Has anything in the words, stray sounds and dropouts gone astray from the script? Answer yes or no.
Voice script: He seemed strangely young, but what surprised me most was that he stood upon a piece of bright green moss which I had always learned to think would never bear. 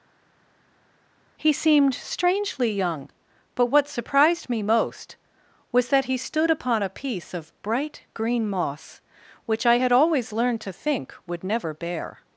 no